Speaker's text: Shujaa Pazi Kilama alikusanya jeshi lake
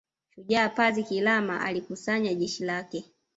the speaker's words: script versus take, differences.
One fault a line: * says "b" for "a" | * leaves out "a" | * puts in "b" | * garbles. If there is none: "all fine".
all fine